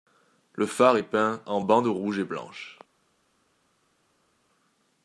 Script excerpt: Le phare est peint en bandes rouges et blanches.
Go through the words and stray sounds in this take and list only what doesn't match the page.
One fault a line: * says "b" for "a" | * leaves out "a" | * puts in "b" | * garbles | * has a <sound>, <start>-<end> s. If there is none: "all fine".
all fine